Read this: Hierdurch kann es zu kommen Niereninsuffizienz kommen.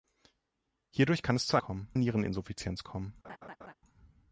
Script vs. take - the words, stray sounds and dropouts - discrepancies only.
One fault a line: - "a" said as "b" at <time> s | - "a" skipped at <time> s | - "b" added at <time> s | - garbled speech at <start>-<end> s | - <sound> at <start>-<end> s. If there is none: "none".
- laugh at 3.2-3.7 s